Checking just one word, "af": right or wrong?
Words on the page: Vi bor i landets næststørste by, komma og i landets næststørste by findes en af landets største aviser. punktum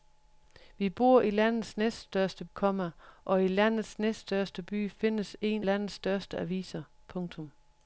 wrong